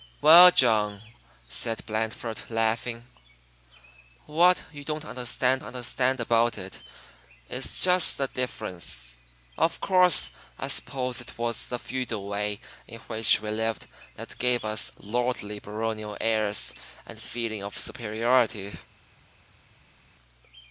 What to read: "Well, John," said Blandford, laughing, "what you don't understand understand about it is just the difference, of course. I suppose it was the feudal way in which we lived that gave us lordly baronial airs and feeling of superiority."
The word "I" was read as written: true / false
true